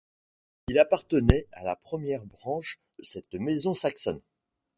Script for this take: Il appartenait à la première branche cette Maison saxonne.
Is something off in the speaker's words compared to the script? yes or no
no